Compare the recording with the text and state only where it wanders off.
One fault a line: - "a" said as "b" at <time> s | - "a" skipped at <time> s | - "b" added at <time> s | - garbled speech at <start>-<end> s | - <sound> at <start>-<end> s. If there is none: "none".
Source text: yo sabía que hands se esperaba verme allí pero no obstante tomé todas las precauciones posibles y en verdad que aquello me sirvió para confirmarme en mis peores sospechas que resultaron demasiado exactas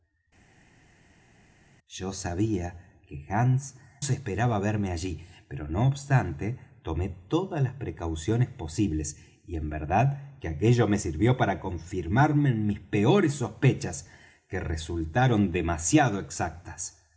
none